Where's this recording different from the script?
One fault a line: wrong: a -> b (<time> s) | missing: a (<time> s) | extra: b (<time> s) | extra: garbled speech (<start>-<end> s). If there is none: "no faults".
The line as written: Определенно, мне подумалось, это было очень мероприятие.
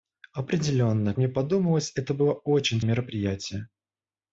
no faults